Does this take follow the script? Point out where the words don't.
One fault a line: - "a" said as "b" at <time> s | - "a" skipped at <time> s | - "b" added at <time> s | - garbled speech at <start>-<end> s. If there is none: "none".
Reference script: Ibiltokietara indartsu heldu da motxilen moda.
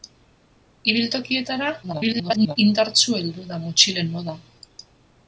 - garbled speech at 1.8-2.6 s